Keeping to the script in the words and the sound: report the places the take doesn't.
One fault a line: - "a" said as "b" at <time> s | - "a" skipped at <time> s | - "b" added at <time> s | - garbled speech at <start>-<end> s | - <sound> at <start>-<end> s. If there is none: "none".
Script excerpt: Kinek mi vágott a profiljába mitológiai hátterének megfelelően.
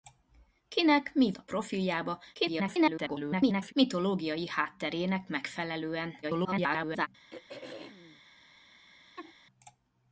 - "vágott" skipped at 1.3 s
- garbled speech at 2.3-3.7 s
- garbled speech at 6.2-7.1 s
- throat clearing at 7.3-8.2 s
- laugh at 9.2-9.3 s